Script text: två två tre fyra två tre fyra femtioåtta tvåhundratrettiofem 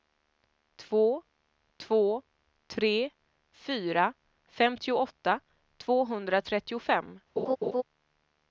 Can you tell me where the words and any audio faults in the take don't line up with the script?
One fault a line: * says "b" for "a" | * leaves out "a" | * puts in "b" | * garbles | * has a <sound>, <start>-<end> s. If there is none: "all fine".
* leaves out "två tre fyra"
* has a laugh, 7.4-7.8 s